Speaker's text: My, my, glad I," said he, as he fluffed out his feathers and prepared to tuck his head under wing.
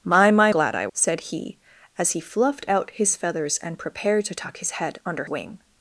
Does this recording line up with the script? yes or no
yes